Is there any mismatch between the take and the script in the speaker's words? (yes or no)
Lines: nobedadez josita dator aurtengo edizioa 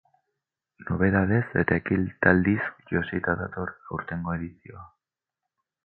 yes